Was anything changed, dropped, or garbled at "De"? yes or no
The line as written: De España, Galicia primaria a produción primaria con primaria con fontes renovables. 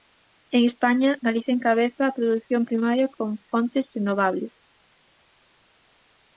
yes